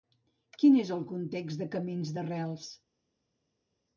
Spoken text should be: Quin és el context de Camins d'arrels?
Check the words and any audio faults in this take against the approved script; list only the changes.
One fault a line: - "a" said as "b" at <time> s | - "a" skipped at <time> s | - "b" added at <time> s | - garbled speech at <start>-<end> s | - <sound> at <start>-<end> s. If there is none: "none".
none